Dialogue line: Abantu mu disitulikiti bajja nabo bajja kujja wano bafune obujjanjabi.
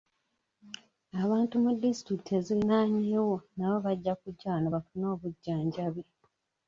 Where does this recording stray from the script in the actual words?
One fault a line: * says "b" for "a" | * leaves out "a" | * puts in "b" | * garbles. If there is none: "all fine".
* says "eziriraanyeewo" for "bajja"